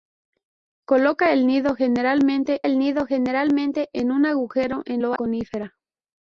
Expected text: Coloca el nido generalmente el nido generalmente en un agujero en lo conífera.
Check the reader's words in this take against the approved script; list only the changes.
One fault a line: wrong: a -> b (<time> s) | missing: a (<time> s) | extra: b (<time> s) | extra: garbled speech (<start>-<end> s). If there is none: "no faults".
no faults